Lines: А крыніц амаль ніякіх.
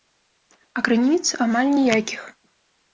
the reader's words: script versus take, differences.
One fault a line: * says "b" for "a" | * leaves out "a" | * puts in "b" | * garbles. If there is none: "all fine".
all fine